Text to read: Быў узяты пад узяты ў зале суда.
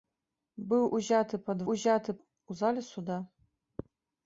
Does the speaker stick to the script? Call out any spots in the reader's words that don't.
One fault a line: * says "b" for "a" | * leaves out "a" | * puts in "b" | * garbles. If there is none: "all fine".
all fine